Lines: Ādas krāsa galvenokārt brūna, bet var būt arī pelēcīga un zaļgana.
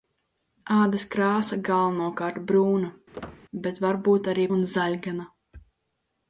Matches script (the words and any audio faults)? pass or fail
fail